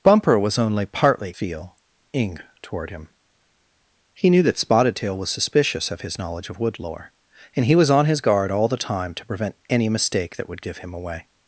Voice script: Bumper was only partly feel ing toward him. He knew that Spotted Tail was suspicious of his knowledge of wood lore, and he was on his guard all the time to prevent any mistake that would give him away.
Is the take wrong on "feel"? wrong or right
right